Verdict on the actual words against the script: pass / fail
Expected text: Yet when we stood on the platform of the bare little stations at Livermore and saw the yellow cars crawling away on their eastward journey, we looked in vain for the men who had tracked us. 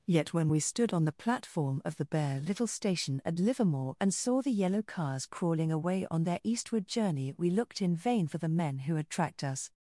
fail